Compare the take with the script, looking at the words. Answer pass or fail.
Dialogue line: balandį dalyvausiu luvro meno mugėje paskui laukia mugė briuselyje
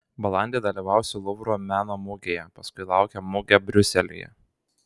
pass